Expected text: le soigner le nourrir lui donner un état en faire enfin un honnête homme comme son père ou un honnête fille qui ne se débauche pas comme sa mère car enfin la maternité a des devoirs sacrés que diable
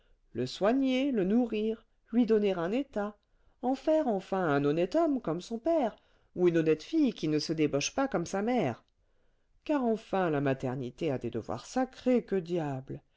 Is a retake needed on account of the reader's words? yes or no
yes